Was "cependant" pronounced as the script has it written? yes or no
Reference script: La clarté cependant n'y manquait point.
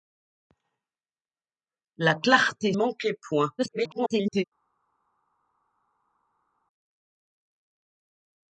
no